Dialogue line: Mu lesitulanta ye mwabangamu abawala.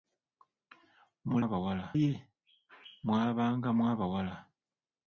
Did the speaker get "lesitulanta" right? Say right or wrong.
wrong